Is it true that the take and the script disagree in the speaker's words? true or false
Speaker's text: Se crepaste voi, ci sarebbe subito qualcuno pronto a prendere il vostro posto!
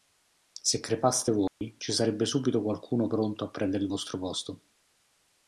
false